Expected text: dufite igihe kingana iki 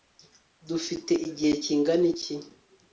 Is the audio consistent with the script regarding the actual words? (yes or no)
yes